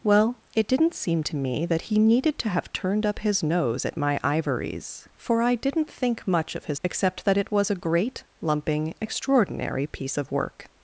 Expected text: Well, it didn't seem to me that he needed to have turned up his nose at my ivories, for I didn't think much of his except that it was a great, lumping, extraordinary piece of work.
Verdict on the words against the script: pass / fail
pass